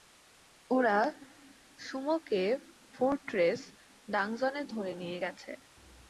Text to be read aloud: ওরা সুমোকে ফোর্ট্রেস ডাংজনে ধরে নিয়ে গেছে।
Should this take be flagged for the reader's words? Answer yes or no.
no